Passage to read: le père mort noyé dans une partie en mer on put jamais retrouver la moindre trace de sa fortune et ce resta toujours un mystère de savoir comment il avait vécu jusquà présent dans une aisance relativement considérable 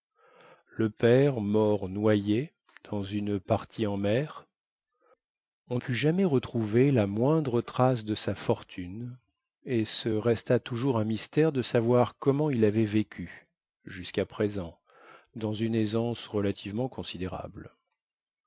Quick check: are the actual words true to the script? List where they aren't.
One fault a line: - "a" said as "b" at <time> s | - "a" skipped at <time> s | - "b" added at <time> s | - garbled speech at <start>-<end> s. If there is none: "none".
none